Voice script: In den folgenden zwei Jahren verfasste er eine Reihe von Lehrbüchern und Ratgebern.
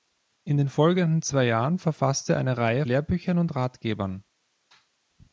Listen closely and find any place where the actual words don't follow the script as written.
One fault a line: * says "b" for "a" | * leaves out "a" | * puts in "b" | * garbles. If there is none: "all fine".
* leaves out "von"